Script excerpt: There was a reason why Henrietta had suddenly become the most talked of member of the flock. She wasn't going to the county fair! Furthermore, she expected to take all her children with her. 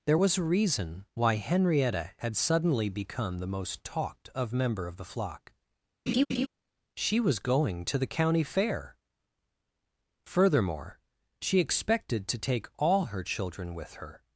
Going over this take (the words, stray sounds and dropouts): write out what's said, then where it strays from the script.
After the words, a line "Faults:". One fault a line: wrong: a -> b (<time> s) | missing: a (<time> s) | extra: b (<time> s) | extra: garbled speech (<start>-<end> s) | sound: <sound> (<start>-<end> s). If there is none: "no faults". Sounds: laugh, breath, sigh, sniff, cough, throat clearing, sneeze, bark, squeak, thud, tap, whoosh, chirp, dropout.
There was a reason why Henrietta had suddenly become the most talked of member of the flock. She was going to the county fair! Furthermore, she expected to take all her children with her.
Faults:
sound: laugh (6.1-6.5 s)
wrong: wasn't -> was (7.2 s)